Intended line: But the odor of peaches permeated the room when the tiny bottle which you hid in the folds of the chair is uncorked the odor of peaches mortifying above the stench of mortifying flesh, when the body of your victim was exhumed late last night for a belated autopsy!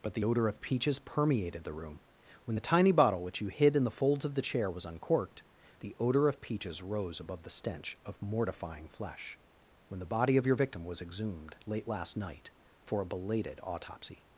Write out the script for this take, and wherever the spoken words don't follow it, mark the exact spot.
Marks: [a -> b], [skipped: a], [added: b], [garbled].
But the odor of peaches permeated the room when the tiny bottle which you hid in the folds of the chair [is -> was] uncorked the odor of peaches [mortifying -> rose] above the stench of mortifying flesh, when the body of your victim was exhumed late last night for a belated autopsy!